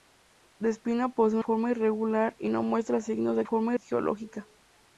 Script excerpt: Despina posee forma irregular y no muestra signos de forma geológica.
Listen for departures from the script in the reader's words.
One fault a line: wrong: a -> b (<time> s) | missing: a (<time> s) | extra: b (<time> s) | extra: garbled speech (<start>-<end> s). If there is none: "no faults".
no faults